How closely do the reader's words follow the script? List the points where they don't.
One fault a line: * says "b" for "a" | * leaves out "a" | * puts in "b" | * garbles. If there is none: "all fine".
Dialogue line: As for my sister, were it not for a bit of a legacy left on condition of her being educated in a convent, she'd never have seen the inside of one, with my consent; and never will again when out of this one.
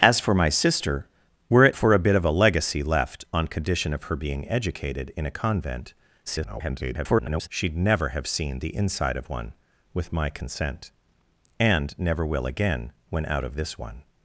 * leaves out "not"
* garbles